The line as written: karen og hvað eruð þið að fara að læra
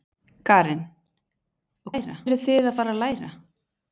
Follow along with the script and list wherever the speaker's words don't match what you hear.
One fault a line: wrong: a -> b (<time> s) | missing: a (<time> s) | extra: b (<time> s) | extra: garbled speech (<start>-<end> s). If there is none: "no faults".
wrong: hvað -> læra (1.9 s)